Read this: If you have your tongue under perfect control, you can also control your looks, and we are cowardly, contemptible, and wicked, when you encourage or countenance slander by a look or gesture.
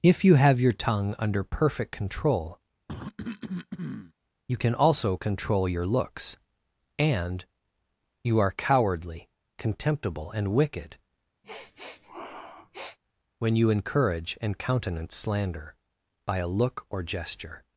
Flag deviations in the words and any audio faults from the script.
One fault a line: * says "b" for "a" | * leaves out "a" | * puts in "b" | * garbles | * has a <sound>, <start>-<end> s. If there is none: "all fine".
* has a cough, 2.9-4.1 s
* says "you" for "we"
* has a sniff, 11.4-13.0 s
* says "and" for "or"